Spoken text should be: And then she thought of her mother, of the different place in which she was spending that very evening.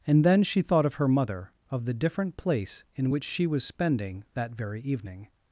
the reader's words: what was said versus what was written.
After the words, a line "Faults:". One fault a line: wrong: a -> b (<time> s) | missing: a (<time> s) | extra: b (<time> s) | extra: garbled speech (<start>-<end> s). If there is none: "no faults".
And then she thought of her mother, of the different place in which she was spending that very evening.
Faults:
no faults